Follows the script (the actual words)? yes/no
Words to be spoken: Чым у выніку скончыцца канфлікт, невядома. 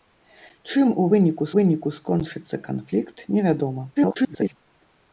no